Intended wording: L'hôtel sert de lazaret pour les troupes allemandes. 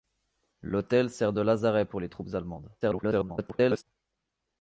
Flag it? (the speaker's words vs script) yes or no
yes